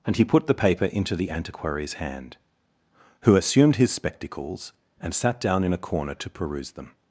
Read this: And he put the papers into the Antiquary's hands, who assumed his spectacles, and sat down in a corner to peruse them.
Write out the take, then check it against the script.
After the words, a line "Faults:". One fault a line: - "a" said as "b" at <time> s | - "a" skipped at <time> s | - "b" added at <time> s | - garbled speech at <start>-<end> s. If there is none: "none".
And he put the paper into the Antiquary's hand, who assumed his spectacles, and sat down in a corner to peruse them.
Faults:
- "papers" said as "paper" at 0.5 s
- "hands" said as "hand" at 1.9 s